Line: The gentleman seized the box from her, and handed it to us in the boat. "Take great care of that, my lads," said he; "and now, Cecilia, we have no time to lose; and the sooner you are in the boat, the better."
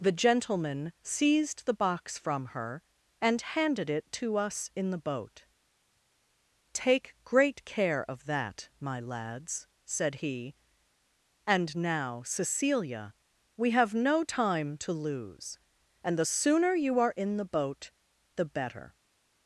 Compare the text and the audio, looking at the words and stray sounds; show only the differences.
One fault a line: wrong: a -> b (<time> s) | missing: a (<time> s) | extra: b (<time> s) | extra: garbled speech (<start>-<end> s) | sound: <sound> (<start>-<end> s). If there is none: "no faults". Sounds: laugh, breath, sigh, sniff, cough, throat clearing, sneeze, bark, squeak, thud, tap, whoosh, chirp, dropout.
no faults